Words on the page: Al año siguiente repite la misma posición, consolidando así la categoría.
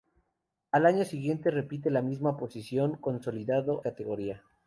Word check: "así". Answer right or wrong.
wrong